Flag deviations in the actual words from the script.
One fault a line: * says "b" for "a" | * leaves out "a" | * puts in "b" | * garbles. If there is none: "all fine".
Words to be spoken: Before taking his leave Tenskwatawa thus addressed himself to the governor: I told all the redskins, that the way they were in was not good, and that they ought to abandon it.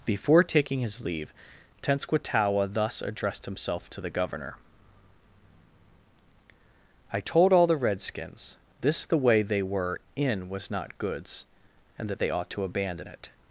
* says "this" for "that"
* says "goods" for "good"